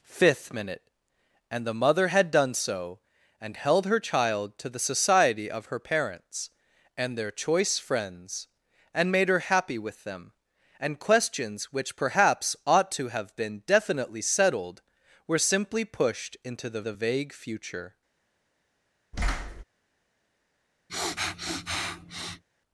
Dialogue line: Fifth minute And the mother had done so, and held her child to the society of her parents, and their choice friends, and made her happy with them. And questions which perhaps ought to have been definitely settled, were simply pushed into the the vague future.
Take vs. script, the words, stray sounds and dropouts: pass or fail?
fail